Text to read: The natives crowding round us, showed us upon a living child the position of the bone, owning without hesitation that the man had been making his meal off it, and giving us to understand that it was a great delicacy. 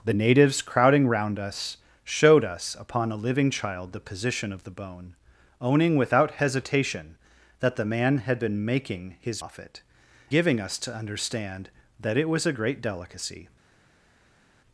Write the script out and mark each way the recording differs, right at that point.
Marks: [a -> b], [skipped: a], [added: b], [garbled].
The natives crowding round us, showed us upon a living child the position of the bone, owning without hesitation that the man had been making his [skipped: meal] off it, [skipped: and] giving us to understand that it was a great delicacy.